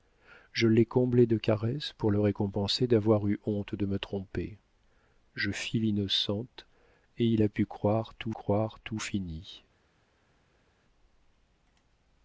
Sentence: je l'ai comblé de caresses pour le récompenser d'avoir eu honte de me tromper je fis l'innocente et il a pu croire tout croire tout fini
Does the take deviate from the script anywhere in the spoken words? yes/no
no